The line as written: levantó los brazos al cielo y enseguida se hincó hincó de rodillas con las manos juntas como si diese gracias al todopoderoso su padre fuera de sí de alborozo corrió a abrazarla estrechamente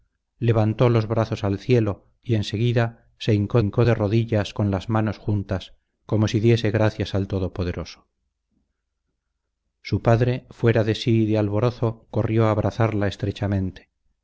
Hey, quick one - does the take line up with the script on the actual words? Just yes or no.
yes